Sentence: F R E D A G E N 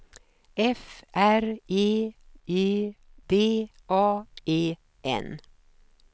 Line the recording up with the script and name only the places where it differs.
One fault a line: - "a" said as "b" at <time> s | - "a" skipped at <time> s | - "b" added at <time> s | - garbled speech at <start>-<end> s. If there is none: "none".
- "E" added at 2.5 s
- "G" skipped at 4.3 s